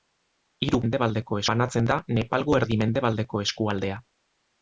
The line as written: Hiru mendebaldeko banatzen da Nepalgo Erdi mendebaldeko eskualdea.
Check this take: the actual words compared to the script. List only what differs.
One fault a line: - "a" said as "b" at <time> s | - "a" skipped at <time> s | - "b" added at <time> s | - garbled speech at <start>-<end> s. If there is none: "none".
none